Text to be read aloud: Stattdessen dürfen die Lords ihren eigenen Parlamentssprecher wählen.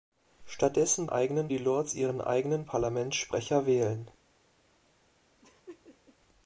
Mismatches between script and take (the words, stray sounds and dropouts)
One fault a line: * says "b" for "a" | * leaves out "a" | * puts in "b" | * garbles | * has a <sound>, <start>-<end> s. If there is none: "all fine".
* says "eigenen" for "dürfen"
* has a laugh, 5.4-6.2 s